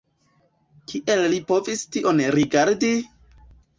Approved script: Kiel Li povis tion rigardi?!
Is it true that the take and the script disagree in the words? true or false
false